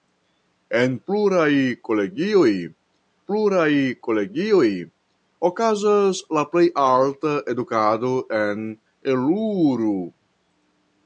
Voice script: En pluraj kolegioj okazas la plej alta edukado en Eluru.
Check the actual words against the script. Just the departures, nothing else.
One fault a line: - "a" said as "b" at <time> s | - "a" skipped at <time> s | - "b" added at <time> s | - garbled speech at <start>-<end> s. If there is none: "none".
- "pluraj kolegioj" added at 3.3 s